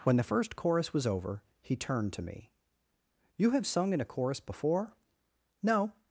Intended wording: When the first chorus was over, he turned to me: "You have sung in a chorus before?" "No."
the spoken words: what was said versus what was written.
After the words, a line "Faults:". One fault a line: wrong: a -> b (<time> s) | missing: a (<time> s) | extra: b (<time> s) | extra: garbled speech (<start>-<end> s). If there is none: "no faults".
When the first chorus was over, he turned to me: "You have sung in a chorus before?" "No."
Faults:
no faults